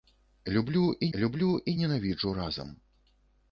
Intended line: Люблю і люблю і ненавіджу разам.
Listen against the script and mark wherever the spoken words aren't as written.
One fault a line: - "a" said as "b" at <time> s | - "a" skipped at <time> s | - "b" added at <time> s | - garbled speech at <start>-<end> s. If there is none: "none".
none